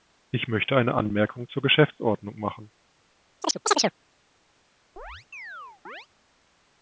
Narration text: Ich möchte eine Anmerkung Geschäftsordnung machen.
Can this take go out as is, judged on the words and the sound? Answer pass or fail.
fail